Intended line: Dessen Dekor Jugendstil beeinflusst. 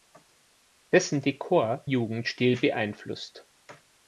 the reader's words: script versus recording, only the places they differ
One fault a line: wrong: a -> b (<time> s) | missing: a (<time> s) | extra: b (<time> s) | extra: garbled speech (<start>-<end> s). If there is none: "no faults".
no faults